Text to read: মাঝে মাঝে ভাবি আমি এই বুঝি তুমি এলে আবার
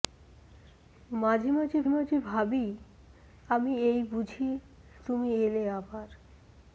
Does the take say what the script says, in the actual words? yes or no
no